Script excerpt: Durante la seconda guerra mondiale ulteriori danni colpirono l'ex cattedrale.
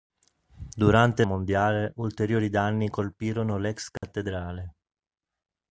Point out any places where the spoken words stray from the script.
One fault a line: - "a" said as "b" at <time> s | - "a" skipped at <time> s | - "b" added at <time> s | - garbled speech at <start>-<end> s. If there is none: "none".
- "la seconda guerra" skipped at 1.2 s